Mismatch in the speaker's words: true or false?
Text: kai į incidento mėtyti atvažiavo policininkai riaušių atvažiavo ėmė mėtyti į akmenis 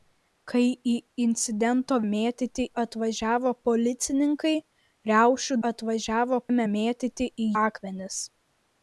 false